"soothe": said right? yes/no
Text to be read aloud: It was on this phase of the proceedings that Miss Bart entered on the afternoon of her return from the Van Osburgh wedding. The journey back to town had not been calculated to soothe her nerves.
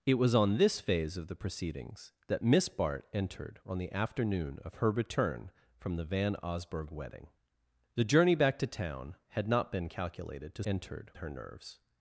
no